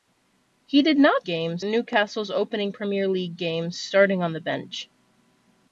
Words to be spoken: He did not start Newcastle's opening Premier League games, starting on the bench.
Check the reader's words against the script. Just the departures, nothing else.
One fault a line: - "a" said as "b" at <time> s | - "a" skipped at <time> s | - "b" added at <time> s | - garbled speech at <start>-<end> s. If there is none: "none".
- "start" said as "games" at 1.2 s